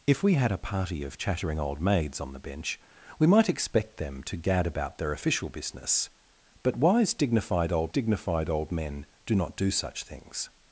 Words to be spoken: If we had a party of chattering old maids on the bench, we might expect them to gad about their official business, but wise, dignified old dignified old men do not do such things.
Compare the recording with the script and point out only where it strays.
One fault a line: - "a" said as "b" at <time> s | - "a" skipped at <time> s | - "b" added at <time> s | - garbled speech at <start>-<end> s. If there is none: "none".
none